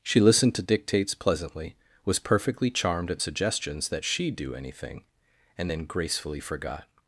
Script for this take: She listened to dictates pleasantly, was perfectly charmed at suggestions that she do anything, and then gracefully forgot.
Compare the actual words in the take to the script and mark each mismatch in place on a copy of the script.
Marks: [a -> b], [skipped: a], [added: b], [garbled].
She listened to dictates pleasantly, was perfectly charmed at suggestions that she do anything, and then gracefully forgot.